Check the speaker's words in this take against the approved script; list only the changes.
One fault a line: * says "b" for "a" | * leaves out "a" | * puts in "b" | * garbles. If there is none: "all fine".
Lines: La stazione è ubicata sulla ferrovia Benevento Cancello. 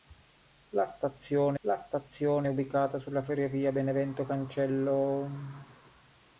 * puts in "la stazione"